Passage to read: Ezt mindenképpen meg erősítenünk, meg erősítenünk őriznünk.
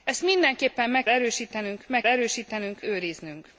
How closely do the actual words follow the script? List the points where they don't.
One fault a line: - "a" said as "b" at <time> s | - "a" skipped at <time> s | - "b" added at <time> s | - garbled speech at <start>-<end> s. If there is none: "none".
none